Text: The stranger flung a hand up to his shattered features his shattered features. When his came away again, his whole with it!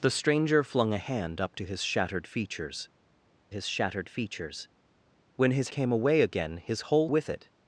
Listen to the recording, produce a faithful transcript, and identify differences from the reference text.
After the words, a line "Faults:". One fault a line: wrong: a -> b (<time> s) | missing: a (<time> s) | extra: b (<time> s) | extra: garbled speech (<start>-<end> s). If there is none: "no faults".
The stranger flung a hand up to his shattered features his shattered features. When his came away again, his whole with it!
Faults:
no faults